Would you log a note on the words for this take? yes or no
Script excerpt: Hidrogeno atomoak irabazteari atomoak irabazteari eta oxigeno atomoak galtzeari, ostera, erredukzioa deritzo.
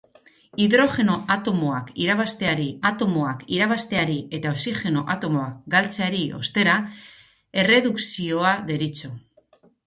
no